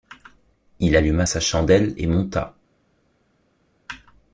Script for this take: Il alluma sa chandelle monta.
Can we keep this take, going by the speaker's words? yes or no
no